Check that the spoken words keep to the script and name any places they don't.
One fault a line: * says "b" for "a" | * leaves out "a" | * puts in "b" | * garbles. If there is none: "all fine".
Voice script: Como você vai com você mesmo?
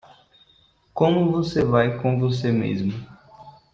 all fine